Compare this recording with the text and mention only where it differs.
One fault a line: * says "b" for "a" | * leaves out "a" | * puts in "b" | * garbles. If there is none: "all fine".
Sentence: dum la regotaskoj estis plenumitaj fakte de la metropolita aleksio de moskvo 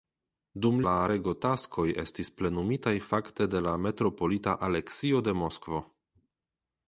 all fine